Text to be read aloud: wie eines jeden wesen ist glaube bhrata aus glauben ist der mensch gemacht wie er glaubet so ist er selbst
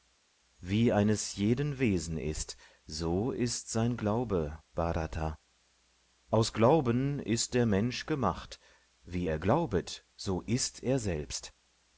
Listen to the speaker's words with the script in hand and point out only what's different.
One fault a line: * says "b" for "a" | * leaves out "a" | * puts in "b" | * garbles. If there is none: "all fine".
* puts in "so ist sein"